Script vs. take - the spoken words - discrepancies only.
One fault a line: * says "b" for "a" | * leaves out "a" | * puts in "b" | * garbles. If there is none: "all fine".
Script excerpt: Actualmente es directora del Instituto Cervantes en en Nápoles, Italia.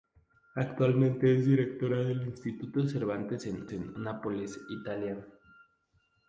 all fine